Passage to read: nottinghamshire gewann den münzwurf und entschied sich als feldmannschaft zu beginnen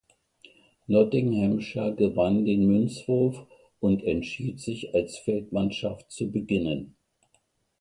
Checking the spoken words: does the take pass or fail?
pass